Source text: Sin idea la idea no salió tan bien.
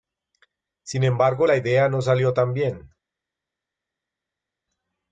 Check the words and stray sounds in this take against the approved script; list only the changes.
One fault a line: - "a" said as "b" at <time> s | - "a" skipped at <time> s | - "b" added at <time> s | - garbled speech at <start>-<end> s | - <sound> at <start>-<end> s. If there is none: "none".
- "idea" said as "embargo" at 1.0 s